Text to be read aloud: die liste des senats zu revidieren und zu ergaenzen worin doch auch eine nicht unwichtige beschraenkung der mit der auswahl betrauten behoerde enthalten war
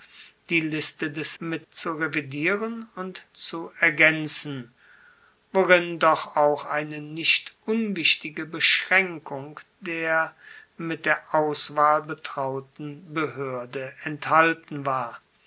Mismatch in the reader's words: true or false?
true